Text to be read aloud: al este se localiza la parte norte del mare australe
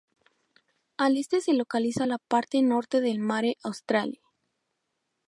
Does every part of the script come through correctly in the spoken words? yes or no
yes